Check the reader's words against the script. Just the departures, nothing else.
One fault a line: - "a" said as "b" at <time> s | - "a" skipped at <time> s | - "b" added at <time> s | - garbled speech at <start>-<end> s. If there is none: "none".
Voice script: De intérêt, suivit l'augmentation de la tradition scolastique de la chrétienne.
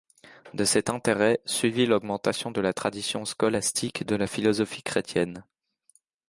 - "cet" added at 0.6 s
- "philosophie" added at 4.2 s